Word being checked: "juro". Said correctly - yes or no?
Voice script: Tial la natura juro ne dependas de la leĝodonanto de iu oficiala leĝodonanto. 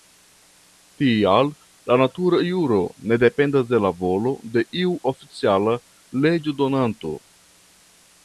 yes